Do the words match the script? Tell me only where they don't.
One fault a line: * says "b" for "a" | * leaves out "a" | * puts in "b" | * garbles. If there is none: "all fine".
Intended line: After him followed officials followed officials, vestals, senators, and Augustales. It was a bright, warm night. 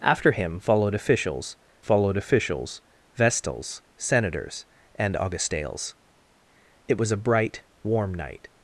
all fine